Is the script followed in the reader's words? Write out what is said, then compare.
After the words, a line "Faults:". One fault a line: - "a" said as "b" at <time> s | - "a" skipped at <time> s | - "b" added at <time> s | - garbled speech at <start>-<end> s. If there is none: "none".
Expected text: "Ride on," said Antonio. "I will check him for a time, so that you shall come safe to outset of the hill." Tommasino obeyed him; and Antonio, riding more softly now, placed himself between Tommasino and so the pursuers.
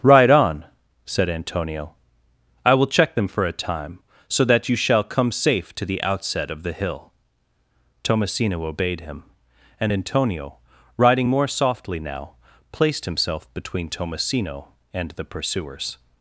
"Ride on," said Antonio. "I will check them for a time, so that you shall come safe to the outset of the hill." Tommasino obeyed him; and Antonio, riding more softly now, placed himself between Tommasino and the pursuers.
Faults:
- "him" said as "them" at 3.1 s
- "the" added at 5.8 s
- "so" skipped at 15.1 s